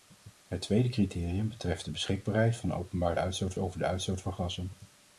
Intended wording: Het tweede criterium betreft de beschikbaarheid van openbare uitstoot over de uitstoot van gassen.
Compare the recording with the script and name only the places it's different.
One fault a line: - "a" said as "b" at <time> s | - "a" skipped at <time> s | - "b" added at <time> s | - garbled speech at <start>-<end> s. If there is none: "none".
none